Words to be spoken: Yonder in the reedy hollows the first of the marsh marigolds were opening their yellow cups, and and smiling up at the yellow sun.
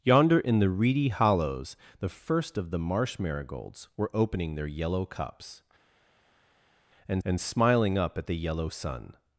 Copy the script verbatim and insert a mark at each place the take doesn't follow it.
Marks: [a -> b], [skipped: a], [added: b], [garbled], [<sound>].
Yonder in the reedy hollows the first of the marsh marigolds were opening their yellow cups, and and smiling up at the yellow sun.